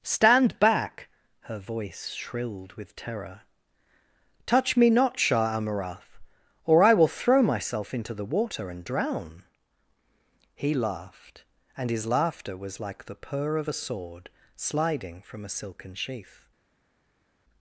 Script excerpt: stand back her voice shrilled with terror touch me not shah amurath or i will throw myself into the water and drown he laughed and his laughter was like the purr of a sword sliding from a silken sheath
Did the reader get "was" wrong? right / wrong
right